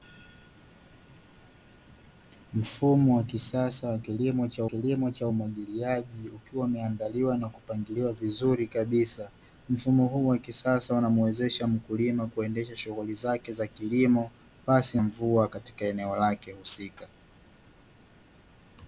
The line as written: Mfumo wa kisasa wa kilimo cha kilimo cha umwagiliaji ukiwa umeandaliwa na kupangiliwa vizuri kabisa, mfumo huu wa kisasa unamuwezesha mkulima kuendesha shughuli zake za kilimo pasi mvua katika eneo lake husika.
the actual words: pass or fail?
pass